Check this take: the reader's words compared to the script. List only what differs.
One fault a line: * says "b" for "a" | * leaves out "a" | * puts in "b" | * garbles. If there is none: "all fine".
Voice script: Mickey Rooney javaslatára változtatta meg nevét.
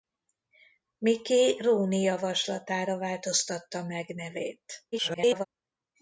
* garbles